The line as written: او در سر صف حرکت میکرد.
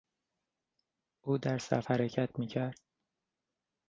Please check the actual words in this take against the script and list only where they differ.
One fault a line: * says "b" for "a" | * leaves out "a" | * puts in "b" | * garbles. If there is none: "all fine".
* leaves out "سر"